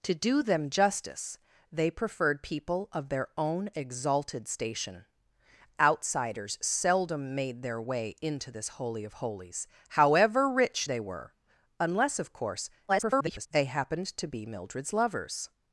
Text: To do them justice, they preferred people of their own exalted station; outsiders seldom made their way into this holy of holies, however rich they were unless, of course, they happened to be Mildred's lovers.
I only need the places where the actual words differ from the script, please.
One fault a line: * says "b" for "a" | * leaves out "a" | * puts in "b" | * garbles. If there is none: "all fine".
* garbles